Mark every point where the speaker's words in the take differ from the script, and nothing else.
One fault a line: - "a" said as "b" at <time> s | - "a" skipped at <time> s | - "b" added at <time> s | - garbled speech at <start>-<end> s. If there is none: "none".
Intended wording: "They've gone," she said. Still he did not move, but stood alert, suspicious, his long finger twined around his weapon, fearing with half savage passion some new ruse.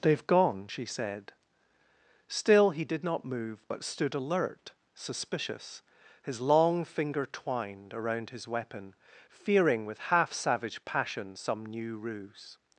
none